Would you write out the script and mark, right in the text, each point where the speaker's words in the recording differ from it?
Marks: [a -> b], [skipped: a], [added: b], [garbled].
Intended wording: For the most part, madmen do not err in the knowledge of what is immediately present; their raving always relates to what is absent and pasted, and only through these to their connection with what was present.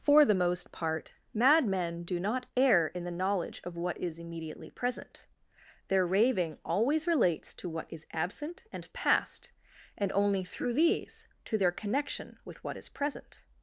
For the most part, madmen do not err in the knowledge of what is immediately present; their raving always relates to what is absent and [pasted, -> past] and only through these to their connection with what [was -> is] present.